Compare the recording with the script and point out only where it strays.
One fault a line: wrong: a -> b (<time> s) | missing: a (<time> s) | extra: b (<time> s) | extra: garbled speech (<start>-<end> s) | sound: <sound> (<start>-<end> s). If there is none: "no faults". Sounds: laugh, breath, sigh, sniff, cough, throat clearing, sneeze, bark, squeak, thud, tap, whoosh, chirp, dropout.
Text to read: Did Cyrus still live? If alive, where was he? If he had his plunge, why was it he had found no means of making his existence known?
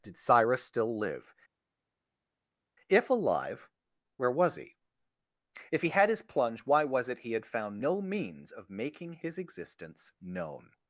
no faults